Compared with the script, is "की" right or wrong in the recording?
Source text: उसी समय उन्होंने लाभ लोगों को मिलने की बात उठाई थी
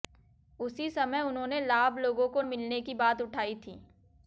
right